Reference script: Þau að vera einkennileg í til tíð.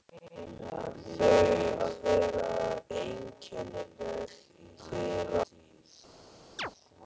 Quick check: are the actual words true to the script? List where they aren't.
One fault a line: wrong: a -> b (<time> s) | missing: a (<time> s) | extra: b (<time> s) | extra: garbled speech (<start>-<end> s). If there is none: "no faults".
no faults